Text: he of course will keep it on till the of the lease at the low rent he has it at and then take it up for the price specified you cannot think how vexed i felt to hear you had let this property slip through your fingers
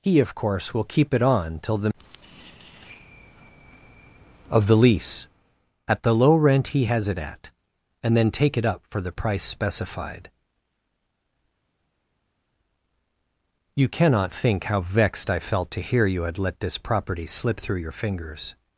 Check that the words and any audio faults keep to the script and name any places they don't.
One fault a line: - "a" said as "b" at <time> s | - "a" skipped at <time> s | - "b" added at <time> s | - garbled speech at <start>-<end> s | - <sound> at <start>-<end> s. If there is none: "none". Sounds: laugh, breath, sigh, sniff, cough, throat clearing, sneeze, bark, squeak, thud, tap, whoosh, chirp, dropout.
none